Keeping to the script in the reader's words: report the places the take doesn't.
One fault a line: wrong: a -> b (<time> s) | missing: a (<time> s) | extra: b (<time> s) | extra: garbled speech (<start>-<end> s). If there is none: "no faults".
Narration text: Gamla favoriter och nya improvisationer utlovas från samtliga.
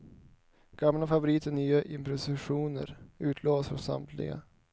no faults